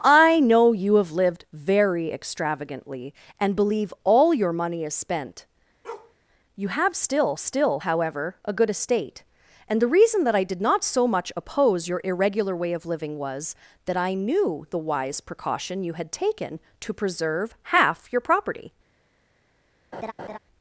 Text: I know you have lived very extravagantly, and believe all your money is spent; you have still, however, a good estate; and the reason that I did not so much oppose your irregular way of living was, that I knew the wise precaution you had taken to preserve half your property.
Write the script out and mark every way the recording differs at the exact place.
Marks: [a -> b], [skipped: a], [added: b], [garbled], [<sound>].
I know you have lived very extravagantly, and believe all your money is spent; [bark] you have still, [added: still] however, a good estate; and the reason that I did not so much oppose your irregular way of living was, that I knew the wise precaution you had taken to preserve half your property. [laugh]